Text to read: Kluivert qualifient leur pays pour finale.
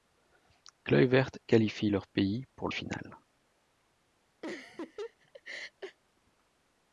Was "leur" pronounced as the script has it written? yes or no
yes